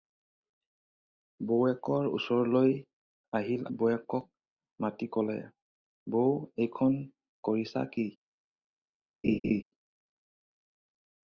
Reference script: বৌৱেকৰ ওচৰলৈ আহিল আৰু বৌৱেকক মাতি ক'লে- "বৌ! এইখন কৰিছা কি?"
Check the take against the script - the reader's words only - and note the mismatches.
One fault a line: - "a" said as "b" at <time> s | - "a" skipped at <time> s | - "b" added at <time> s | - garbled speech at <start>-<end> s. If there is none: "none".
- "আৰু" skipped at 3.7 s